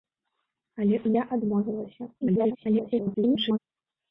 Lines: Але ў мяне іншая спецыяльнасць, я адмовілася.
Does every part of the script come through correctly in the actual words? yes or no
no